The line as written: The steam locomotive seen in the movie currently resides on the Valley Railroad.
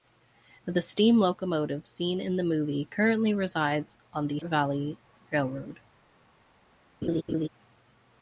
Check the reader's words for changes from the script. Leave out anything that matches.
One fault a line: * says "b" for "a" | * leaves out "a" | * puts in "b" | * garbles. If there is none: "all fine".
all fine